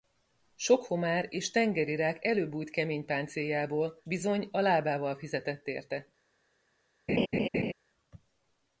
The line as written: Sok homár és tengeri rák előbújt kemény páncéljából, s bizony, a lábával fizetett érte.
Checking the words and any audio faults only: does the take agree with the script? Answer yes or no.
no